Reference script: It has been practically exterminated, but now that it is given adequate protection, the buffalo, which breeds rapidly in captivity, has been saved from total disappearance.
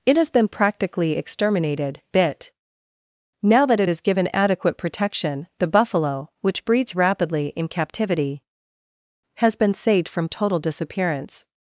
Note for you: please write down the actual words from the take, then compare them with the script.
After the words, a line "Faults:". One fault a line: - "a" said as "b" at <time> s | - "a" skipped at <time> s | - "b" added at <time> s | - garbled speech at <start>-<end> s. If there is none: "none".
It has been practically exterminated, bit now that it is given adequate protection, the buffalo, which breeds rapidly in captivity, has been saved from total disappearance.
Faults:
- "but" said as "bit" at 2.1 s